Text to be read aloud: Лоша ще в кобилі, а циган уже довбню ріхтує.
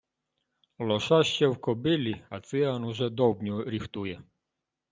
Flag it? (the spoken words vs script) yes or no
no